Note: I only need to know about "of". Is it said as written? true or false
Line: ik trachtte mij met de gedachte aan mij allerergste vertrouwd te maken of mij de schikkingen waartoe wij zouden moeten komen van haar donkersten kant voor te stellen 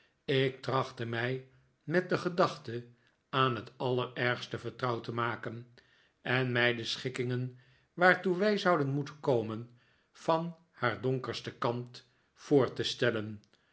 false